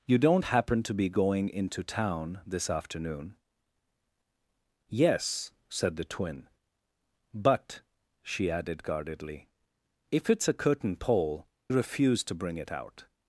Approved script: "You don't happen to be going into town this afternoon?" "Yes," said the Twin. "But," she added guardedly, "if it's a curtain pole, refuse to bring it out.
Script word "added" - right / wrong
right